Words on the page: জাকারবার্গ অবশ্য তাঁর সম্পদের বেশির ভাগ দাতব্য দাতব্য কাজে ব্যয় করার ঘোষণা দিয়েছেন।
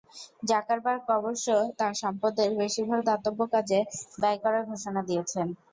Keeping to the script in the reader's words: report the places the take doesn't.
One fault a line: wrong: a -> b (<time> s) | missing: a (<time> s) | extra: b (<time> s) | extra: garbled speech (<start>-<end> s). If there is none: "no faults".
missing: দাতব্য (3.4 s)